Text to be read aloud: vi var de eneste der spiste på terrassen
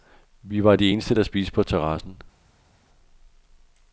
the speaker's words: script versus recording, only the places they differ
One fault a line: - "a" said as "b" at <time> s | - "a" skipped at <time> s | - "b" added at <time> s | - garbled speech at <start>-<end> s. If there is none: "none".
none